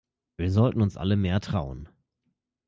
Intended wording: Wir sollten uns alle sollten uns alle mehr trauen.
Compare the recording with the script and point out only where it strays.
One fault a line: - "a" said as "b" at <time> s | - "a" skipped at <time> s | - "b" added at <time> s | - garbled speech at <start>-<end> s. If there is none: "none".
- "sollten uns alle" skipped at 1.2 s